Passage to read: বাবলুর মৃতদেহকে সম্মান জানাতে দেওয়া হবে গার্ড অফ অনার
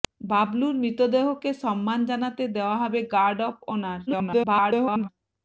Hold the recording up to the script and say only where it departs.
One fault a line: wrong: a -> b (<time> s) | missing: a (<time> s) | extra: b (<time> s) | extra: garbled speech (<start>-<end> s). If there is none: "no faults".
extra: garbled speech (4.1-5.1 s)